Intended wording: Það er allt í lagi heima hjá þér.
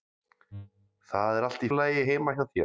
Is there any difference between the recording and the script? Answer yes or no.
no